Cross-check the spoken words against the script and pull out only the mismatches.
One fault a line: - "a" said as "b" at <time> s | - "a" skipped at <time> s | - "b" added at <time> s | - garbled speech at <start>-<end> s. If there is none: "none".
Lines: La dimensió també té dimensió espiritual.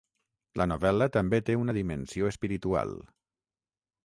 - "dimensió" said as "novel·la" at 0.7 s
- "una" added at 1.6 s